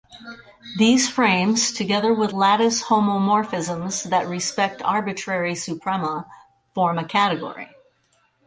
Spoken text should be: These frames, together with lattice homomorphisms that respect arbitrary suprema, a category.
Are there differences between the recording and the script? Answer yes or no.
yes